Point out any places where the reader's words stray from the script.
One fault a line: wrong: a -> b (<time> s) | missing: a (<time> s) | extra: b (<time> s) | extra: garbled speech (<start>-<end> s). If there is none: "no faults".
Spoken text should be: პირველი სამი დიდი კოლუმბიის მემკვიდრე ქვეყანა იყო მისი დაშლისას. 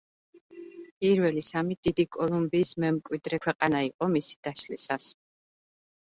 no faults